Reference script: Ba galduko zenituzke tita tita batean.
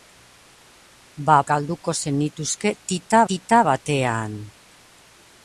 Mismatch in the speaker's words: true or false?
false